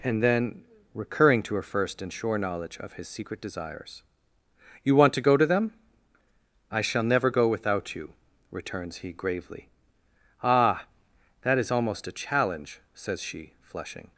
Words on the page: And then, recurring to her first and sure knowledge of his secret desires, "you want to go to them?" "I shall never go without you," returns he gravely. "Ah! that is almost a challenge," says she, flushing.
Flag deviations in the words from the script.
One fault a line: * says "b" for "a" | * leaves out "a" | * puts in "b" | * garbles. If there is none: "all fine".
all fine